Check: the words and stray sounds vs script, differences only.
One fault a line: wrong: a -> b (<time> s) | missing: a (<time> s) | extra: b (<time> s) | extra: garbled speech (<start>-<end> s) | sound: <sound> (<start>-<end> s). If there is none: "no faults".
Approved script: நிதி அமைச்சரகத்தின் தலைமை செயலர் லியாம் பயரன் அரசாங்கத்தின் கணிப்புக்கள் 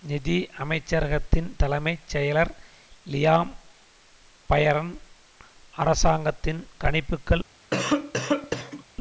sound: cough (7.7-8.8 s)